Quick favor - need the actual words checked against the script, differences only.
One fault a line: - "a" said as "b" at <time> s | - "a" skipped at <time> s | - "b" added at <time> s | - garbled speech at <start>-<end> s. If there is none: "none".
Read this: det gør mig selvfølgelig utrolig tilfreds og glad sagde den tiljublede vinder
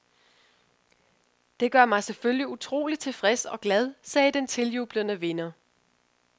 none